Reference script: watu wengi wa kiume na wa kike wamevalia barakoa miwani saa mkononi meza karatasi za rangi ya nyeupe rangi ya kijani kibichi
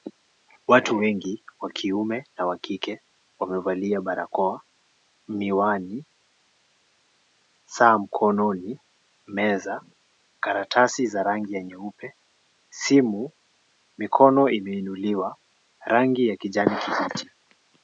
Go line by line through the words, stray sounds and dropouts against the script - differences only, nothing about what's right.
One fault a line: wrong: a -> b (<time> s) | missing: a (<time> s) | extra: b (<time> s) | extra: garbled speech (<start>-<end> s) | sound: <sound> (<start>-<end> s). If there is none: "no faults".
extra: simu mikono imeinuliwa (12.7 s)